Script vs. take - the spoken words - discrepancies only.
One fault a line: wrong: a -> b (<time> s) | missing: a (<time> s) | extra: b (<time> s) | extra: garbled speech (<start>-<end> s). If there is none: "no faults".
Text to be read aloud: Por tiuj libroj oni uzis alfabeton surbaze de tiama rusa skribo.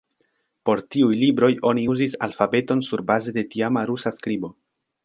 no faults